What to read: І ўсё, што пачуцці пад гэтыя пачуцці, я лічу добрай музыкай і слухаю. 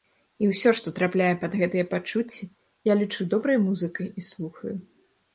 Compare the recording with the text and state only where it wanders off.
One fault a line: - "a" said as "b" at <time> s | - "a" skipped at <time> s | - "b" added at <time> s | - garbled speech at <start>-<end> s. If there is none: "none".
- "пачуцці" said as "трапляе" at 1.0 s